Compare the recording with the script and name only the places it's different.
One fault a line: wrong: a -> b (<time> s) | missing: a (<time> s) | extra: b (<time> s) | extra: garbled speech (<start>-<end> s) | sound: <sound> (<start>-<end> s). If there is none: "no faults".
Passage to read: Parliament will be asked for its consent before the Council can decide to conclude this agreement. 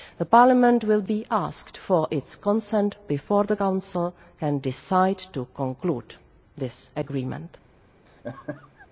sound: laugh (8.1-8.9 s)